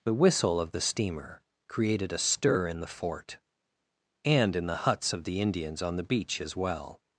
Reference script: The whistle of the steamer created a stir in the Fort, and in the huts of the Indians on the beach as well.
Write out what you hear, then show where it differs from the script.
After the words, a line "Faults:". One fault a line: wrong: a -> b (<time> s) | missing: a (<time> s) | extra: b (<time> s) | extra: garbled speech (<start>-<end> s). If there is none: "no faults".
The whistle of the steamer created a stir in the Fort, and in the huts of the Indians on the beach as well.
Faults:
no faults